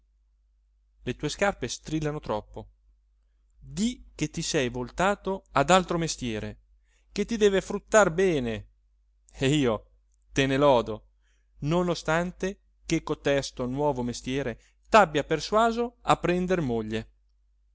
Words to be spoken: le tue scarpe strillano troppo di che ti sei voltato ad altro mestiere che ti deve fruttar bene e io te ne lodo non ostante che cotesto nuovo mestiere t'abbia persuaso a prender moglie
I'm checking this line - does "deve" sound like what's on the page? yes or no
yes